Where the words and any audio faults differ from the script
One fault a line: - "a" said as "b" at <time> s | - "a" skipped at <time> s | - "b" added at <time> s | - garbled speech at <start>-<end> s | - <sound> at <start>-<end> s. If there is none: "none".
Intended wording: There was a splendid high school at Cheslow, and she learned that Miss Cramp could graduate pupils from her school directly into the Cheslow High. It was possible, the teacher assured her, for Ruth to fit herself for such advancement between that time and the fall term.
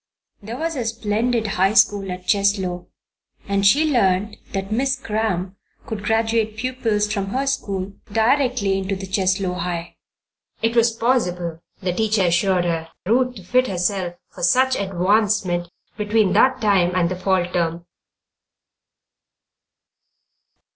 - "for" skipped at 12.9 s